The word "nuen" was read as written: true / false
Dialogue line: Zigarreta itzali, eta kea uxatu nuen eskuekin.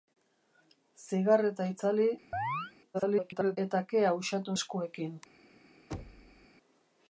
false